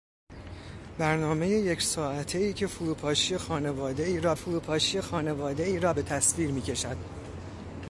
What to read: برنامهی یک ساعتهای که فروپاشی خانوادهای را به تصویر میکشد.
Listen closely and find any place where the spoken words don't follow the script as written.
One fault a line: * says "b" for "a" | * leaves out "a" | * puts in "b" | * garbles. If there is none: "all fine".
* puts in "فروپاشی خانوادهای را"